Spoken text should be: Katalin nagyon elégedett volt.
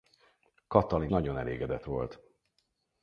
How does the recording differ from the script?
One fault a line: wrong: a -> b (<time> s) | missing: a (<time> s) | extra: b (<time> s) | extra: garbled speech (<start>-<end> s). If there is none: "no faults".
no faults